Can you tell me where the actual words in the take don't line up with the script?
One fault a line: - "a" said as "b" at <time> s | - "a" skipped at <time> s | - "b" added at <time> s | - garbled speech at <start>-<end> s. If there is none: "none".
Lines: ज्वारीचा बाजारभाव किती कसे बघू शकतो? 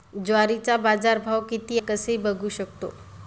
none